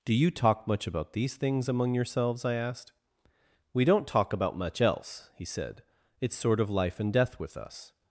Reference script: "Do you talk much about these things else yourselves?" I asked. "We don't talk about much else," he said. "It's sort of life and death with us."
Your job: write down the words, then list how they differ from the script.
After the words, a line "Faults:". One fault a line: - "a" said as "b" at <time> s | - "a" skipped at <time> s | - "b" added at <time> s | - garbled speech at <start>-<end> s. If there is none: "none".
"Do you talk much about these things among yourselves?" I asked. "We don't talk about much else," he said. "It's sort of life and death with us."
Faults:
- "else" said as "among" at 1.7 s